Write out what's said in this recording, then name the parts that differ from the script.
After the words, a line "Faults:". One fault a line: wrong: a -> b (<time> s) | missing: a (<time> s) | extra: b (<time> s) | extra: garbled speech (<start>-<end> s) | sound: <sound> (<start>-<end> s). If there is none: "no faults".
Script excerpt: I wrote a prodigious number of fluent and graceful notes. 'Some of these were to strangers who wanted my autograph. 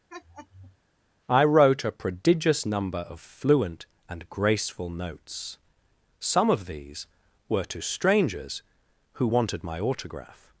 I wrote a prodigious number of fluent and graceful notes. 'Some of these were to strangers who wanted my autograph.
Faults:
sound: laugh (0.1-0.8 s)